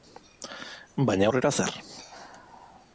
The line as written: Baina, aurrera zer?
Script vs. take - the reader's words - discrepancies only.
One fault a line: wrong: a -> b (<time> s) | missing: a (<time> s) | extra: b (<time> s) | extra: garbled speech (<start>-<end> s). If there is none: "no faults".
no faults